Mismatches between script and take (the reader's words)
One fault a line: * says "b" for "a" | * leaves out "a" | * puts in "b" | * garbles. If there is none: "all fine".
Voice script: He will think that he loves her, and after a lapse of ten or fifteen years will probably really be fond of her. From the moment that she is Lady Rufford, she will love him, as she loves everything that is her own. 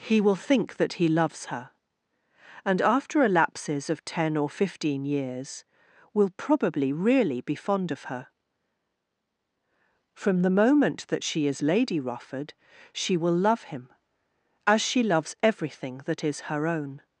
* says "lapses" for "lapse"